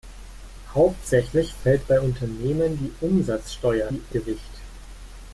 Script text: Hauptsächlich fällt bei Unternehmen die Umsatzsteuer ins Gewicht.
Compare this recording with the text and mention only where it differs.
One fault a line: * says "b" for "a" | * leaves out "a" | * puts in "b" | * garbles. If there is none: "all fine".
* says "die" for "ins"